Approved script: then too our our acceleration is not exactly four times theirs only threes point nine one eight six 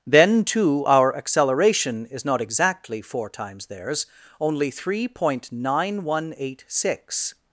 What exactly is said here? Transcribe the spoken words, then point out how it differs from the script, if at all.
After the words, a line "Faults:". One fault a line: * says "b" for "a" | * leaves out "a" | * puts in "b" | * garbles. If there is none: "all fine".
then too our acceleration is not exactly four times theirs only three point nine one eight six
Faults:
* leaves out "our"
* says "three" for "threes"